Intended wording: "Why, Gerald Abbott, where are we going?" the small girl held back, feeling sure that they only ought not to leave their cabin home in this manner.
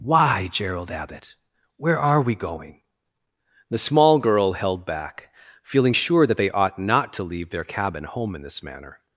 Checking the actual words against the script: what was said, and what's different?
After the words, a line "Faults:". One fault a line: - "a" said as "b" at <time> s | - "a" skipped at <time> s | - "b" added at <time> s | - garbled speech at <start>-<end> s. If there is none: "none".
"Why, Gerald Abbott, where are we going?" the small girl held back, feeling sure that they ought not to leave their cabin home in this manner.
Faults:
- "only" skipped at 6.5 s